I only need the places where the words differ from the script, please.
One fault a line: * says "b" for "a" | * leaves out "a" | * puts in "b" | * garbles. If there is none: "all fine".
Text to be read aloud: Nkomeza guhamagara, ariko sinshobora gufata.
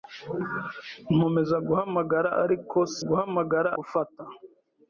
* says "guhamagara" for "sinshobora"